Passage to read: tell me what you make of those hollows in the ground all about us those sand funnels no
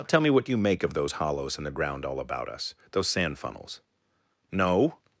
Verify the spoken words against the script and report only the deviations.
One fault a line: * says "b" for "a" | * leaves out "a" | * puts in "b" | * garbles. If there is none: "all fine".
all fine